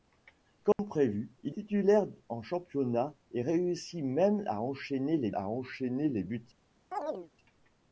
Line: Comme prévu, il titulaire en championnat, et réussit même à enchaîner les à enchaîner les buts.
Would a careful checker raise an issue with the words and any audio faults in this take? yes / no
yes